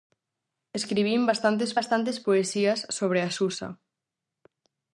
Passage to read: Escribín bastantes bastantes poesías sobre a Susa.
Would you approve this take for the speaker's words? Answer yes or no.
yes